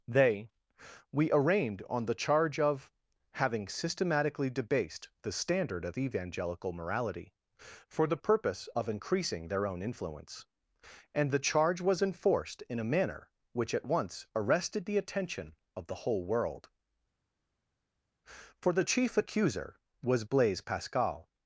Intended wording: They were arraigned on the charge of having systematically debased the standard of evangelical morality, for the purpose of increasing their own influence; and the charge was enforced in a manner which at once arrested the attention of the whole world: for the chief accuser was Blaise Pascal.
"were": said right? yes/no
no